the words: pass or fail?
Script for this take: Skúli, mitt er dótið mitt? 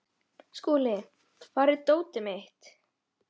fail